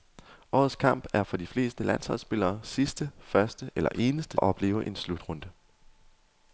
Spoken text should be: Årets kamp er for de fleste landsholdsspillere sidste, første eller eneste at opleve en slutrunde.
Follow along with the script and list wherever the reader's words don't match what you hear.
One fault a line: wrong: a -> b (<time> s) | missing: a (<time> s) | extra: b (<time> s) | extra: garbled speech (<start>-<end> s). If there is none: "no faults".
no faults